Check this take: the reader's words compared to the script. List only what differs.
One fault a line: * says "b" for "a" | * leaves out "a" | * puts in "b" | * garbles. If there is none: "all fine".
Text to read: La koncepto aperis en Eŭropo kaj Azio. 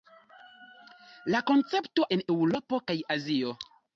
* leaves out "aperis"